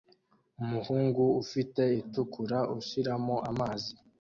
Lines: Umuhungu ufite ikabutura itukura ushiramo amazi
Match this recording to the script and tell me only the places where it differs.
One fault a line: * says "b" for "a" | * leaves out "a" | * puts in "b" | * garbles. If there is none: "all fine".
* leaves out "ikabutura"